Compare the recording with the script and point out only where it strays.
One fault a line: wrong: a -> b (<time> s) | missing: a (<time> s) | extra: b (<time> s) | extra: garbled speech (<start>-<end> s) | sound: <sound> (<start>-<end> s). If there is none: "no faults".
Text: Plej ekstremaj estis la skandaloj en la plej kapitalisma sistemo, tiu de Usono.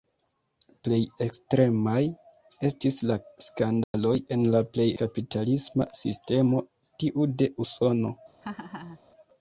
sound: dropout (3.8-3.9 s)
sound: laugh (8.4-9.0 s)